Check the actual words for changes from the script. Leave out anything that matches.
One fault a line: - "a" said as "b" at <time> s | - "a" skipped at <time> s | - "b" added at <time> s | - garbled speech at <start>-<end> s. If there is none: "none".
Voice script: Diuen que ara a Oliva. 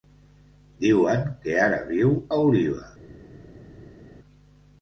- "viu" added at 1.9 s